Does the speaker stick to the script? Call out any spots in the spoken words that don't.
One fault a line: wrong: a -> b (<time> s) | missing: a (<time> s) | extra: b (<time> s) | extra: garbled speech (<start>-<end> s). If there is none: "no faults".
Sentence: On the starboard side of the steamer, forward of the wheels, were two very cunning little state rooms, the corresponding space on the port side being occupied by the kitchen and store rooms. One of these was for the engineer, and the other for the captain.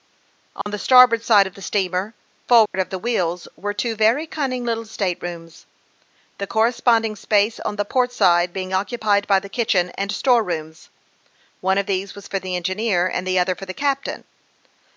no faults